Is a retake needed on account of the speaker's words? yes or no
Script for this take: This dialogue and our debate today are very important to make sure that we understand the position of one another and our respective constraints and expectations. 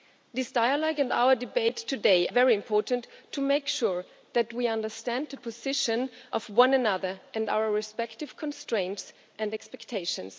yes